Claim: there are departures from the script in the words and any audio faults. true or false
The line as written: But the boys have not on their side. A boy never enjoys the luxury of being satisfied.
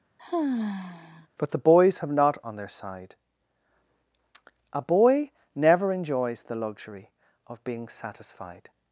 true